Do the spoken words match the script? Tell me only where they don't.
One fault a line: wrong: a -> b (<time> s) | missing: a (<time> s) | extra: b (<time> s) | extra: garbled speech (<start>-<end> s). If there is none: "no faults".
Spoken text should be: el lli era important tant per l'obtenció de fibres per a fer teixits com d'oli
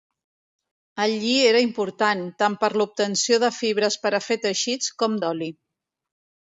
no faults